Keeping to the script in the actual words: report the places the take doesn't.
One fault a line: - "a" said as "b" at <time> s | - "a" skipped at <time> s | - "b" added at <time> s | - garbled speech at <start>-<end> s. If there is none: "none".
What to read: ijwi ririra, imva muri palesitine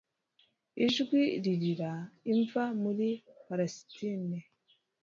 none